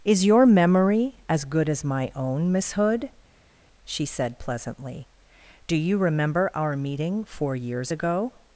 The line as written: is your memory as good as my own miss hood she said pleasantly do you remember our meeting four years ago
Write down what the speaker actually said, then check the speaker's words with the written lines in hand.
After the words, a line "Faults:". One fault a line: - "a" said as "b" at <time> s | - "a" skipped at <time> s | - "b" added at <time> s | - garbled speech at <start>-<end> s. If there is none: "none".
is your memory as good as my own miss hood she said pleasantly do you remember our meeting four years ago
Faults:
none